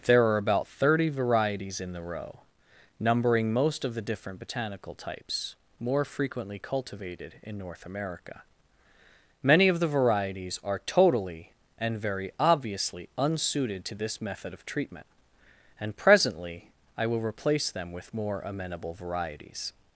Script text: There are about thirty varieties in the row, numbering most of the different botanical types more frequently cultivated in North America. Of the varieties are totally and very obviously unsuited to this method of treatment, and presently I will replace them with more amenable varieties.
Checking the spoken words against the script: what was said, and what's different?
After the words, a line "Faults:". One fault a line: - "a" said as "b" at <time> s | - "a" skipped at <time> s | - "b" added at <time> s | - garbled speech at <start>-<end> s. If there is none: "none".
There are about thirty varieties in the row, numbering most of the different botanical types more frequently cultivated in North America. Many of the varieties are totally and very obviously unsuited to this method of treatment, and presently I will replace them with more amenable varieties.
Faults:
- "Many" added at 9.4 s